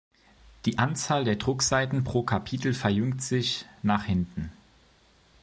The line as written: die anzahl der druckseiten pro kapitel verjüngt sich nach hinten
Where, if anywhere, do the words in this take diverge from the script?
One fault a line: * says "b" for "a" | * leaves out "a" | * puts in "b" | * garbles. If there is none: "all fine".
all fine